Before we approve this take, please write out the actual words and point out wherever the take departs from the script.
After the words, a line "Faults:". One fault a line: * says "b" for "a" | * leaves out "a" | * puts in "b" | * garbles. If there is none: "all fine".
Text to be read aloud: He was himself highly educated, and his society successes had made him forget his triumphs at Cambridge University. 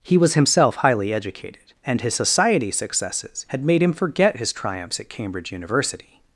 He was himself highly educated, and his society successes had made him forget his triumphs at Cambridge University.
Faults:
all fine